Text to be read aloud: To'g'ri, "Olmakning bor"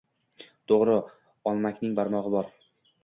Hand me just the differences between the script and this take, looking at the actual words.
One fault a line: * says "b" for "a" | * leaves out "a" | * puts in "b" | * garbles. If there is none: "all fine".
* puts in "barmog'i"